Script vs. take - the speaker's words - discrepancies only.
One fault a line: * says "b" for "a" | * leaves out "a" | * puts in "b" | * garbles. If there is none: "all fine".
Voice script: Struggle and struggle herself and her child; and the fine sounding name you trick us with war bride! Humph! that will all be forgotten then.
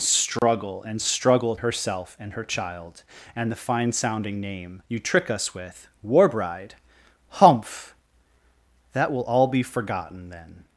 all fine